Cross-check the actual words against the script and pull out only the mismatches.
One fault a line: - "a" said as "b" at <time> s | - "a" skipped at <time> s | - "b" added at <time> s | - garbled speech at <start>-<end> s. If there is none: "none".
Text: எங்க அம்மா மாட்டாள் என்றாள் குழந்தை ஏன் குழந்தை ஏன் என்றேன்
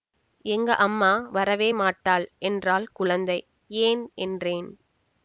- "வரவே" added at 1.3 s
- "குழந்தை ஏன்" skipped at 4.0 s